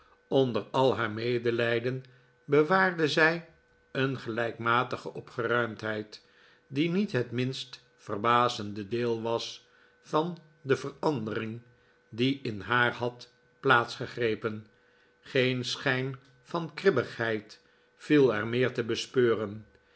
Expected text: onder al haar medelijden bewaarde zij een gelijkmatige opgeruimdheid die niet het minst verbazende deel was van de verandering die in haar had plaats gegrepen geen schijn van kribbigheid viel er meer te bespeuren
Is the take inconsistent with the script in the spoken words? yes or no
no